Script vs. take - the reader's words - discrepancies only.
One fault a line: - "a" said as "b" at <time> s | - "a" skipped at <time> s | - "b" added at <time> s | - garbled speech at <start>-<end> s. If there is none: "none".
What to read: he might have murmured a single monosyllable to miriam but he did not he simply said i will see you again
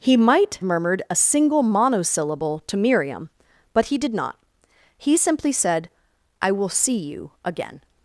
- "have" skipped at 0.6 s